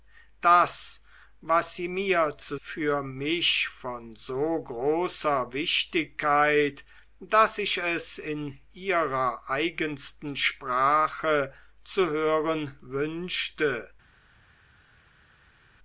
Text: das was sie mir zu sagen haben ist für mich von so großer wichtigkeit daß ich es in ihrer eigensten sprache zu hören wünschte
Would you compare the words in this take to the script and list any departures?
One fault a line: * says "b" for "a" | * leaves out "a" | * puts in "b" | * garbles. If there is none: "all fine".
* leaves out "sagen haben ist"